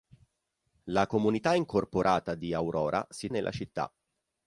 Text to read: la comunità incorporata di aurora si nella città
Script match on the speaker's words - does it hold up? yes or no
yes